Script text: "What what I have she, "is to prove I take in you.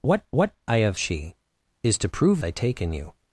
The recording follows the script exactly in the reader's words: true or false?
true